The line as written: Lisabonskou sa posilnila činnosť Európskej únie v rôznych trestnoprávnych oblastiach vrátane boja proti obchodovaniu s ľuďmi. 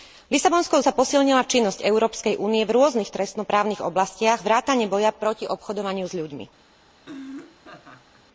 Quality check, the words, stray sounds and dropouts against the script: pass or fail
fail